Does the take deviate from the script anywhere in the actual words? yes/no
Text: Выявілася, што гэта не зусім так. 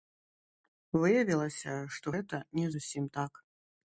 no